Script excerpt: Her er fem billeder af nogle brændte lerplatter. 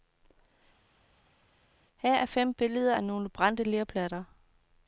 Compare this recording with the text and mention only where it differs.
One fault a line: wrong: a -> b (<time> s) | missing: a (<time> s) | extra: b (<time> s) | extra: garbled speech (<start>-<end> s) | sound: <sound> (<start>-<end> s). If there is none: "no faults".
no faults